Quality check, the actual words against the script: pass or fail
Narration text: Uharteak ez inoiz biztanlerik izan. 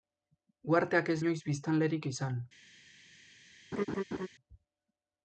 pass